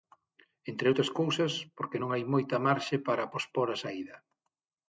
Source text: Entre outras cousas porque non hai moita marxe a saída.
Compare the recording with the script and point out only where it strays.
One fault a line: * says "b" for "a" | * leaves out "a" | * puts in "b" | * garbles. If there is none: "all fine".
* puts in "para pospor"